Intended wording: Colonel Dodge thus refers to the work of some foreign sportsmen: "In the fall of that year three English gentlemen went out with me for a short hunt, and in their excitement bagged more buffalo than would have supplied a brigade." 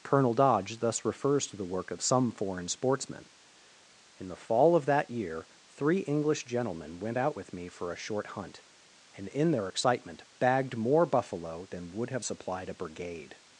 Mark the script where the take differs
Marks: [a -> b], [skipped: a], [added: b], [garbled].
Colonel Dodge thus refers to the work of some foreign sportsmen: "In the fall of that year three English gentlemen went out with me for a short hunt, and in their excitement bagged more buffalo than would have supplied a brigade."